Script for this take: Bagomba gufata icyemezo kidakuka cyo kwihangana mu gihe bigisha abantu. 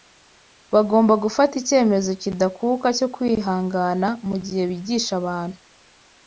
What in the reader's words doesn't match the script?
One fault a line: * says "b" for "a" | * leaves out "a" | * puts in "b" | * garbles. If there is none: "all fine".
all fine